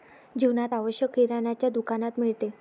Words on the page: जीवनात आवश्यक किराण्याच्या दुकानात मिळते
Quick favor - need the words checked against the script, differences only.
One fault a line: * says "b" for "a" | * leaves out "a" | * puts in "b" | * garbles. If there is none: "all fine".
all fine